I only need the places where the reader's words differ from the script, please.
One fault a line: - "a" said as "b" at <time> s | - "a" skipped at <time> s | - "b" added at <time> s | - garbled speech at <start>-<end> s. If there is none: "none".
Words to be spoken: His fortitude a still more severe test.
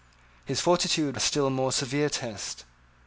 none